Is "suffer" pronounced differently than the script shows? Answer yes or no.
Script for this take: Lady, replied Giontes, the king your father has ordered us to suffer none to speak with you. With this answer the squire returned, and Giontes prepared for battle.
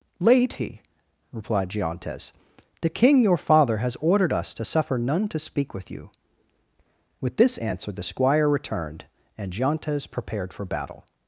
no